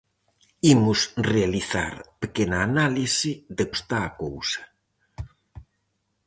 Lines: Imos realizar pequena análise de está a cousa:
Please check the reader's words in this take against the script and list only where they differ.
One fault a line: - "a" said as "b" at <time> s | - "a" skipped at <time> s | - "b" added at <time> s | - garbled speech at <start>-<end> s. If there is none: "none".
none